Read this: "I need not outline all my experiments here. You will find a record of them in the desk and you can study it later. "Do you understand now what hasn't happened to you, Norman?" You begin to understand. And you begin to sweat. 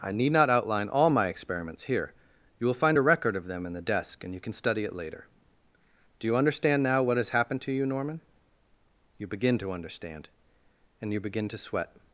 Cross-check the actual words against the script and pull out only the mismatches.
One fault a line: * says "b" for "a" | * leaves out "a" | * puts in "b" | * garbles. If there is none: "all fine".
* says "has" for "hasn't"